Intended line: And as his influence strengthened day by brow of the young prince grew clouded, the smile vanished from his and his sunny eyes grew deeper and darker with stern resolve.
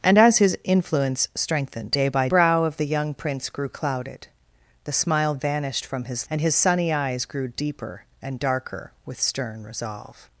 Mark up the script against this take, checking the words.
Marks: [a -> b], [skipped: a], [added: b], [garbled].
And as his influence strengthened day by brow of the young prince grew clouded, the smile vanished from his and his sunny eyes grew deeper and darker with stern resolve.